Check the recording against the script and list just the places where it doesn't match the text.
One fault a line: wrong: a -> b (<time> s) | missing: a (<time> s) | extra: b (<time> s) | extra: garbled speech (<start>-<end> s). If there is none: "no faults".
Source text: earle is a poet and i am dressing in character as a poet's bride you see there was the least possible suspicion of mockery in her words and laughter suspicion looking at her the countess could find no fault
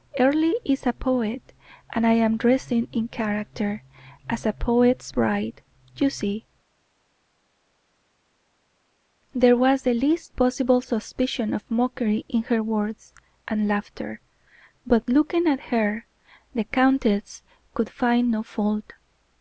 wrong: suspicion -> but (14.8 s)